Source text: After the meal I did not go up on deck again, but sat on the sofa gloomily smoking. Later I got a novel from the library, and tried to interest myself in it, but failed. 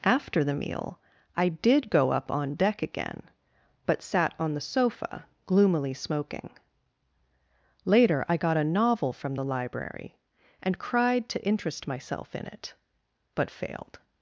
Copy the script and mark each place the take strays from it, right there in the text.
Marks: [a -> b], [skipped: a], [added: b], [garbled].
After the meal I did [skipped: not] go up on deck again, but sat on the sofa gloomily smoking. Later I got a novel from the library, and [tried -> cried] to interest myself in it, but failed.